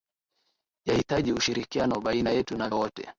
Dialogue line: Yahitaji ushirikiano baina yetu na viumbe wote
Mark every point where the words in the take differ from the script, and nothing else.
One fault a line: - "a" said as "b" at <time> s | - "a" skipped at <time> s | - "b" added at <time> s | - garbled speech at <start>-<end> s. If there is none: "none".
- "viumbe" skipped at 2.7 s